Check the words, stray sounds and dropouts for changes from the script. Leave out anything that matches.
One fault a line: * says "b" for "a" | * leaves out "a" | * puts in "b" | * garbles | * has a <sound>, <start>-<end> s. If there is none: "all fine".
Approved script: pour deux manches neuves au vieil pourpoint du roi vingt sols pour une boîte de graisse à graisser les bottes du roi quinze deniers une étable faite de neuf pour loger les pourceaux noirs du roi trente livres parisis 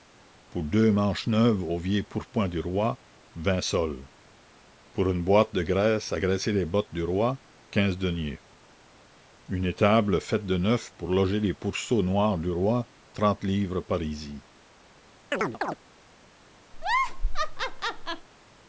* has a chirp, 15.3-15.8 s
* has a laugh, 16.7-18.3 s